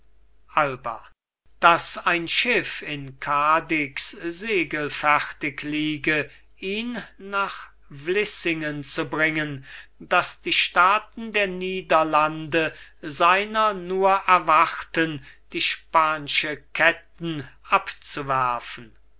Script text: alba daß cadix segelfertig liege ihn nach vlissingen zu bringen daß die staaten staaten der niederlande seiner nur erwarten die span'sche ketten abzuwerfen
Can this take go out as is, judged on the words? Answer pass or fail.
fail